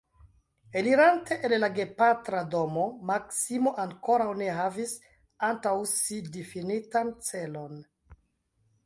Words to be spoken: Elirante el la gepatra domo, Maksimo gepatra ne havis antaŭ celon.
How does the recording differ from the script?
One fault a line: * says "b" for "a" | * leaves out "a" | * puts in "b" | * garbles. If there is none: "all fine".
* says "ankoraŭ" for "gepatra"
* puts in "si difinitan"